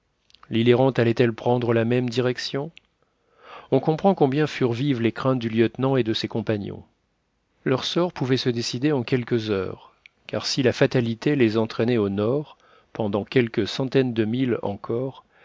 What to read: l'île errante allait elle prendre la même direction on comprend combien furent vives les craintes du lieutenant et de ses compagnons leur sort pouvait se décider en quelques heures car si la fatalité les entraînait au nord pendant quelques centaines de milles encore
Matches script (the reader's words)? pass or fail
pass